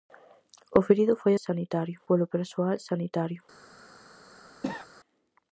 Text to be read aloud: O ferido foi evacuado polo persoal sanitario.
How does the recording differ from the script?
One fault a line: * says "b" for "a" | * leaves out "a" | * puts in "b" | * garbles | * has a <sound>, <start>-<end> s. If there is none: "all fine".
* says "sanitario" for "evacuado"
* has a cough, 4.6-4.9 s